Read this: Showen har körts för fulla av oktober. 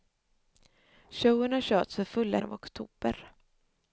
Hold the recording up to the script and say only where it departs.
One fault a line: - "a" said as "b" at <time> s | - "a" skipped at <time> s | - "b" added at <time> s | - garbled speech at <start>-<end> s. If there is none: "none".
none